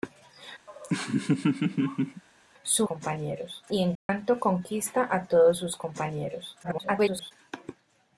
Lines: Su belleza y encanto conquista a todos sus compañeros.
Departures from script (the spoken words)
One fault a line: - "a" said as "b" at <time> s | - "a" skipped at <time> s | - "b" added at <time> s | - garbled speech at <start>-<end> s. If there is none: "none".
- "belleza" said as "compañeros" at 2.8 s
- garbled speech at 6.6-7.3 s